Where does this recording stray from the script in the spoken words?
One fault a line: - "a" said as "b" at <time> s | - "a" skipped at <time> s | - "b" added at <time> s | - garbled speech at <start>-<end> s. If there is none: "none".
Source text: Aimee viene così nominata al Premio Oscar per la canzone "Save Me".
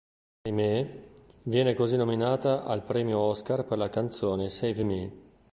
none